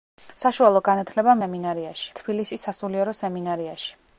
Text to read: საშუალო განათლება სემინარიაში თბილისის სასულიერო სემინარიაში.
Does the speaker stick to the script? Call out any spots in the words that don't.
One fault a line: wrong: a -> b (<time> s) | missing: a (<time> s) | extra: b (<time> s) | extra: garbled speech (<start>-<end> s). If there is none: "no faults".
no faults